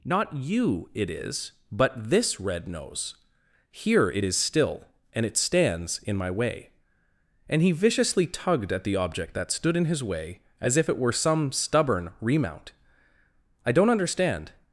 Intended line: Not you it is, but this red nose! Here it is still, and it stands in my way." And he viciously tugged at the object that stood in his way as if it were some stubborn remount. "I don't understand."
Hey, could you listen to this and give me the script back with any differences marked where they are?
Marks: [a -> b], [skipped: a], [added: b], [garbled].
Not you it is, but this red nose! Here it is still, and it stands in my way." And he viciously tugged at the object that stood in his way as if it were some stubborn remount. "I don't understand."